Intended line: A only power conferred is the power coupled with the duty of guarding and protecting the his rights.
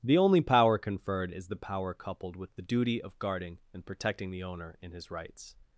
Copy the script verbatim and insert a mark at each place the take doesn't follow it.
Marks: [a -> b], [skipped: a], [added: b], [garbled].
[A -> The] only power conferred is the power coupled with the duty of guarding and protecting the [added: owner in] his rights.